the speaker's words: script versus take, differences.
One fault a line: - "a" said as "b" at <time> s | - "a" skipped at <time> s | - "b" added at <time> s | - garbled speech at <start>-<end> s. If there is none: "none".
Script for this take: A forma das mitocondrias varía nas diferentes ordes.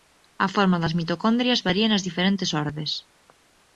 none